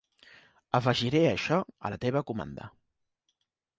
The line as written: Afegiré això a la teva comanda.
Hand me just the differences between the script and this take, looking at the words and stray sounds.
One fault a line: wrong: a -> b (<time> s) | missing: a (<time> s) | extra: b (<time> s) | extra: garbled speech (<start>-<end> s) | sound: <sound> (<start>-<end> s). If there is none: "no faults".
no faults